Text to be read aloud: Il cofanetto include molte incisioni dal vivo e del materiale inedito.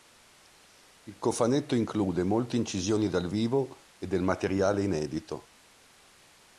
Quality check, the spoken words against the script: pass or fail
pass